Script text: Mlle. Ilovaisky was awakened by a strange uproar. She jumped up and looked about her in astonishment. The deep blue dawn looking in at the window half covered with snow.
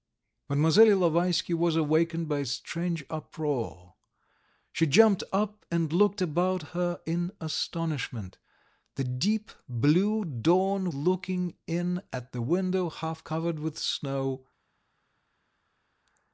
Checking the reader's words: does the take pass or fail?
pass